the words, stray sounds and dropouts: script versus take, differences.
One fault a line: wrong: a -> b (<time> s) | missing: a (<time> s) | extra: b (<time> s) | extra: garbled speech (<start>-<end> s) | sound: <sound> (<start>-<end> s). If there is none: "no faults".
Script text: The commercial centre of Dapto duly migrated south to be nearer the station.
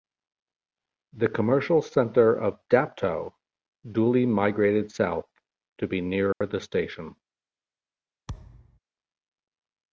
sound: dropout (6.3-6.4 s)
sound: thud (8.3-8.8 s)